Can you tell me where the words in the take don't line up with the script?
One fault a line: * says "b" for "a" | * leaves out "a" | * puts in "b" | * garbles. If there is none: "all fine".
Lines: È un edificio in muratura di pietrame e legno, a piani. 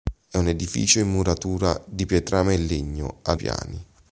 all fine